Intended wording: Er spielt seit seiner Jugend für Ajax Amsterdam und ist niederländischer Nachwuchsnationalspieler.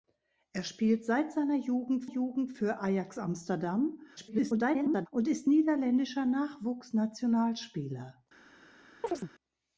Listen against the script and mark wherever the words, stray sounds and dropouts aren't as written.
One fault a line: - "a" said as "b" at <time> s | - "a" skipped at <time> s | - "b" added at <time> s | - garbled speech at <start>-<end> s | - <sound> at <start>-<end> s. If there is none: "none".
- "Jugend" added at 2.0 s
- garbled speech at 4.2-5.1 s
- chirp at 9.0-9.3 s